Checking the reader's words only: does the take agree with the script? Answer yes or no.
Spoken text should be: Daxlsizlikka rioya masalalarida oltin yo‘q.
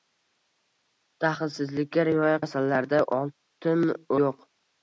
yes